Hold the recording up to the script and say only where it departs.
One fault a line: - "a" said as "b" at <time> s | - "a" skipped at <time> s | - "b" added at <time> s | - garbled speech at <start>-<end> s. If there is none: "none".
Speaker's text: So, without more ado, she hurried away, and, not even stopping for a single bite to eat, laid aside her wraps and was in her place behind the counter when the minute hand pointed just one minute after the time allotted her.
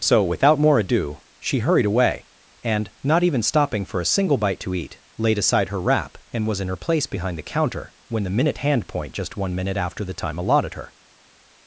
- "wraps" said as "wrap" at 5.8 s
- "pointed" said as "point" at 8.9 s